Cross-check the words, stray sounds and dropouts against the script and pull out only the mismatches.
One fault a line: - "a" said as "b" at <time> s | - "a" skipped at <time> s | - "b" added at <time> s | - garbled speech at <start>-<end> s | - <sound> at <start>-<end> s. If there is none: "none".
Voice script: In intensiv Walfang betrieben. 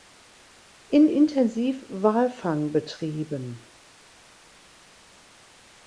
none